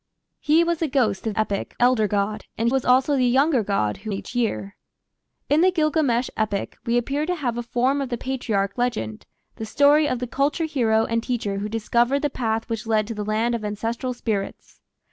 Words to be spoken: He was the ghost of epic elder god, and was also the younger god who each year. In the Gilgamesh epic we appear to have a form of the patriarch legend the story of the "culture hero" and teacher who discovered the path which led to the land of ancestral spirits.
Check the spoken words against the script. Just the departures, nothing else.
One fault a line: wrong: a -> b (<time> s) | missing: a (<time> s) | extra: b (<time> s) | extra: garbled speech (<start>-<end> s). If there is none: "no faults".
no faults